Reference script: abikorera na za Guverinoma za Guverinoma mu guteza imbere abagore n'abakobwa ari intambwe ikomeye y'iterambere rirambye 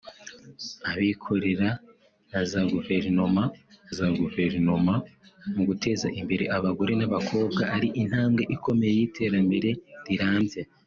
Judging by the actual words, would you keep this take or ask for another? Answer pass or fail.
pass